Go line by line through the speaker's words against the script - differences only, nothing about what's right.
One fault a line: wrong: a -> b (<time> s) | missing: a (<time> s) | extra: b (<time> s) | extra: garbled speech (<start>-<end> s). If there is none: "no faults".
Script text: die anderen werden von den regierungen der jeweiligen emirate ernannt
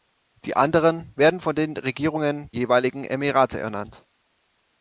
missing: der (2.5 s)